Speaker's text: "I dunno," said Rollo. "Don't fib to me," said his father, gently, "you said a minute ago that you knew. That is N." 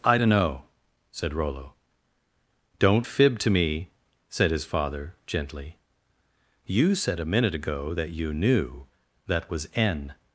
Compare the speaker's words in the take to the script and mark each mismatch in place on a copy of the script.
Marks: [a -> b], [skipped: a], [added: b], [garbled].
"I dunno," said Rollo. "Don't fib to me," said his father, gently, "you said a minute ago that you knew. That [is -> was] N."